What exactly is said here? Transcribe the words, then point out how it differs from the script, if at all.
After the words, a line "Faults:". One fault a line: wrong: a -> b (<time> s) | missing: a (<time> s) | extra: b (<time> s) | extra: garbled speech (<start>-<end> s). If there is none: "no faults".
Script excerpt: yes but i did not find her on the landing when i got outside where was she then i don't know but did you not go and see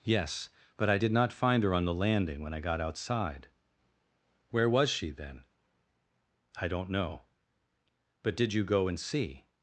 yes but i did not find her on the landing when i got outside where was she then i don't know but did you go and see
Faults:
missing: not (8.6 s)